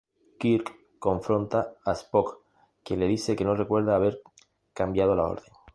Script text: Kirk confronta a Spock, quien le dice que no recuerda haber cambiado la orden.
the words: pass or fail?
pass